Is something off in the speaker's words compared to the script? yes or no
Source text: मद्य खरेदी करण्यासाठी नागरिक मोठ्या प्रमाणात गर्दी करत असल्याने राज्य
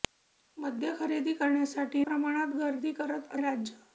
yes